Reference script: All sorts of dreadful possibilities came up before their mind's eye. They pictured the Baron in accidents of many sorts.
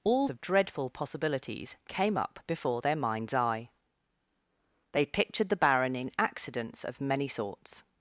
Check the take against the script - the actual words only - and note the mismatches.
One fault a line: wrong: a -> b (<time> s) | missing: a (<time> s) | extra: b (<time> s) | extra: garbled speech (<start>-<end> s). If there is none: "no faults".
missing: sorts (0.3 s)